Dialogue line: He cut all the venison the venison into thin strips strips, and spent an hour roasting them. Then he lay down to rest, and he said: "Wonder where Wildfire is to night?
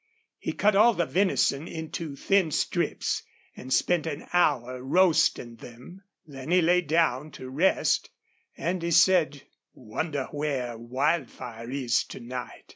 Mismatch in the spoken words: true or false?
true